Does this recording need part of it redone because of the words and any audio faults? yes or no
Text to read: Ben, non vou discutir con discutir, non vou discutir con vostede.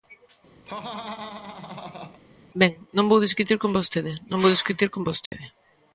yes